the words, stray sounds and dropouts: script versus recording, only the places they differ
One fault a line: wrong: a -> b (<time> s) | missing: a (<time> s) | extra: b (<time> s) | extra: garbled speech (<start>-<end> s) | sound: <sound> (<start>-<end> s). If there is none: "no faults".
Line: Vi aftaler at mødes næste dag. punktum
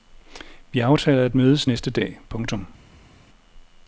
no faults